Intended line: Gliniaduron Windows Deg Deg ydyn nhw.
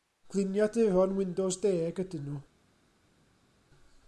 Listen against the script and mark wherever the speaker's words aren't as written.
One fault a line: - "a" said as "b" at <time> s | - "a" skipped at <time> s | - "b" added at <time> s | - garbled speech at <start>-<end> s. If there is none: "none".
- "Deg" skipped at 2.0 s